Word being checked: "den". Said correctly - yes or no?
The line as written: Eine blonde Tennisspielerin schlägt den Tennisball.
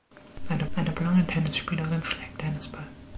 no